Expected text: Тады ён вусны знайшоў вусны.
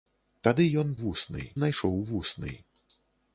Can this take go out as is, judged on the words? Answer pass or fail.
pass